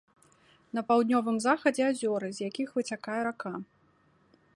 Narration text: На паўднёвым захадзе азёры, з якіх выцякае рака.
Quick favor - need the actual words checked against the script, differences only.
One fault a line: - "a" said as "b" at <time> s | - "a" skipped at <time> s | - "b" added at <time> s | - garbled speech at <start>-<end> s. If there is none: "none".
none